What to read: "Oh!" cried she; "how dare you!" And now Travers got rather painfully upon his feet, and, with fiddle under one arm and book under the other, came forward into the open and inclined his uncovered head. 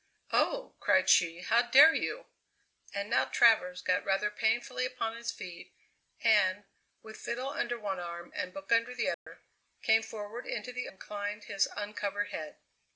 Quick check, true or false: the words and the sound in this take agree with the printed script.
false